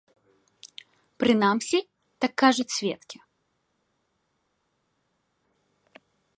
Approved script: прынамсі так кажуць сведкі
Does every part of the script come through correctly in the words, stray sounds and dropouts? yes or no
yes